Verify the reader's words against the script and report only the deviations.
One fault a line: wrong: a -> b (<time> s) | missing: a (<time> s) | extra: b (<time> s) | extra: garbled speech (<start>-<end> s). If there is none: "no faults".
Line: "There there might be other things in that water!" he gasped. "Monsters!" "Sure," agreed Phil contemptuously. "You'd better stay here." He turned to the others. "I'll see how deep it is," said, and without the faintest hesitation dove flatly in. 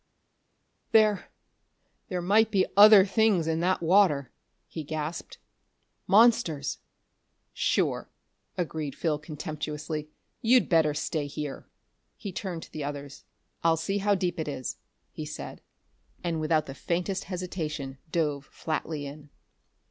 extra: he (15.1 s)